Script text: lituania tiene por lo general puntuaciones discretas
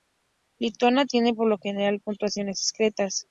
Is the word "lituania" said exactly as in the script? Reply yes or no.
yes